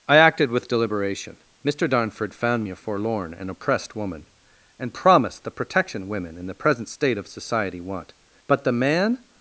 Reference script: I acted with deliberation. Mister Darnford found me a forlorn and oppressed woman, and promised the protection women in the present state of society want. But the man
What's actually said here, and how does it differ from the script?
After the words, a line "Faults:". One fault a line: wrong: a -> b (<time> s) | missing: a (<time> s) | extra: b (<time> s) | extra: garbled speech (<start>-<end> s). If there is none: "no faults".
I acted with deliberation. Mister Darnford found me a forlorn and oppressed woman, and promised the protection women in the present state of society want. But the man
Faults:
no faults